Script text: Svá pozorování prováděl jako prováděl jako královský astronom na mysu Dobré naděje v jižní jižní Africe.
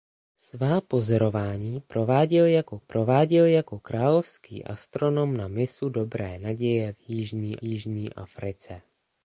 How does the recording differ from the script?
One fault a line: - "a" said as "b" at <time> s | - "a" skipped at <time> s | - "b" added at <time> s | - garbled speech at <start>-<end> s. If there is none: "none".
none